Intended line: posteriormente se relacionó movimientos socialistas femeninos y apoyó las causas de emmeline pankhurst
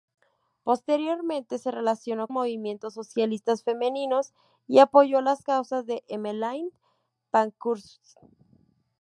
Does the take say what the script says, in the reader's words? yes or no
yes